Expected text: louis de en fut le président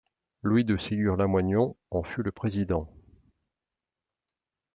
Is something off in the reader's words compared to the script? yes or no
yes